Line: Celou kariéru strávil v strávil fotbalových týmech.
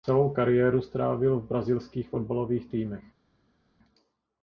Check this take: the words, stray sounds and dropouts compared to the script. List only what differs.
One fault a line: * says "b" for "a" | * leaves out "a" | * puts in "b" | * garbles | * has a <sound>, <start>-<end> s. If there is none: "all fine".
* says "brazilských" for "strávil"